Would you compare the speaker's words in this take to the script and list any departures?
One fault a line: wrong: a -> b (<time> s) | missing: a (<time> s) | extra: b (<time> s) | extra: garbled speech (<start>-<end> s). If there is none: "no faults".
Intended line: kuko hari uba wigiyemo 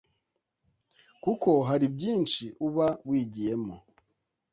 extra: byinshi (1.9 s)